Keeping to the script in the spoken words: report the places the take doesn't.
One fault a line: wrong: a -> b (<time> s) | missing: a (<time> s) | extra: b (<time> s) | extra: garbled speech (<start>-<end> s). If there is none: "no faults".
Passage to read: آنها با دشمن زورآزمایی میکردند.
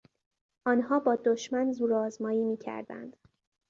no faults